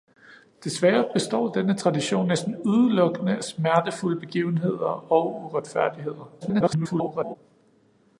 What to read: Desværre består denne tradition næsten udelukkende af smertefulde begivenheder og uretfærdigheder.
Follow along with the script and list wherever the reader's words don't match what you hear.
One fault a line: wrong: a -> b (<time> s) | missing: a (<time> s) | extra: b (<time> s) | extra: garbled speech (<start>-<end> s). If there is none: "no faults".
extra: garbled speech (6.4-7.4 s)